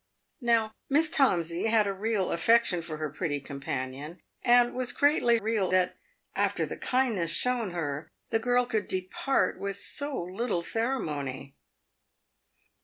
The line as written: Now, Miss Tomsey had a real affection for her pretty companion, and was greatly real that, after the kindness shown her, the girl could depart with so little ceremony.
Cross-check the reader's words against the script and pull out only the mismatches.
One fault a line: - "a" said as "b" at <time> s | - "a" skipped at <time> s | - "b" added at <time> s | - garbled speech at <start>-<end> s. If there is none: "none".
none